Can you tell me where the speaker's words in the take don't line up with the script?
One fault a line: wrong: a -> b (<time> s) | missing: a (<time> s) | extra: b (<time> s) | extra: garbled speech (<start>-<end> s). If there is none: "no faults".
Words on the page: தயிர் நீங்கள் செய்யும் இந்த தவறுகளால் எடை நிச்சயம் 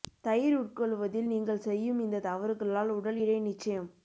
extra: உட்கொள்வதில் (0.6 s)
extra: உடல் (2.9 s)